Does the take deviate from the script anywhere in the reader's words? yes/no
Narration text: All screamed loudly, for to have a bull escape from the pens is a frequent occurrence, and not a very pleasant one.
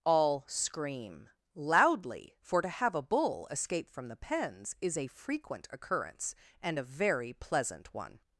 yes